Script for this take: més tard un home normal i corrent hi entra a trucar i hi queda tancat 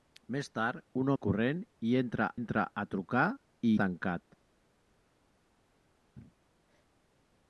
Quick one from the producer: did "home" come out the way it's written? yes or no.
no